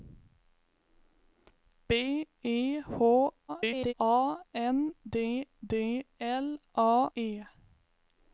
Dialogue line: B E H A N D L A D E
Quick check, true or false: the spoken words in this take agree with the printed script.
false